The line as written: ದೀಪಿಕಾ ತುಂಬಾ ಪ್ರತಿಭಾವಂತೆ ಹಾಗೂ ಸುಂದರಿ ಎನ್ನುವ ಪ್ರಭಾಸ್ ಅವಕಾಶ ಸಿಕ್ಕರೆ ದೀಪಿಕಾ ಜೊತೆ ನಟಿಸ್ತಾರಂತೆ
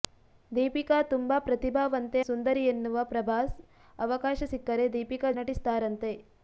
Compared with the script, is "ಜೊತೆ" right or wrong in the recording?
wrong